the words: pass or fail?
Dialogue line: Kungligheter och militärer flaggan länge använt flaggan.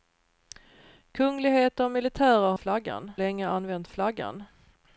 pass